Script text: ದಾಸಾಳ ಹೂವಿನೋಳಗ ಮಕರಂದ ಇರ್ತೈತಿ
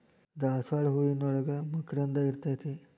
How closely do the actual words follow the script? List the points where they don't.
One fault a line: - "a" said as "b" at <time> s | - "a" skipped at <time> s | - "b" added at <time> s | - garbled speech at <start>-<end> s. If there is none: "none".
none